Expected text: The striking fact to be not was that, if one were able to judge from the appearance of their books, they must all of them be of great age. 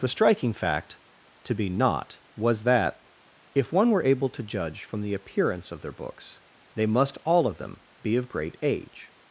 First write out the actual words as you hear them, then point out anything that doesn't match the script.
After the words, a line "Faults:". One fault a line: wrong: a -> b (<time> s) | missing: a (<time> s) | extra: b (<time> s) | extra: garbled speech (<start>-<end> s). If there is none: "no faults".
The striking fact to be not was that, if one were able to judge from the appearance of their books, they must all of them be of great age.
Faults:
no faults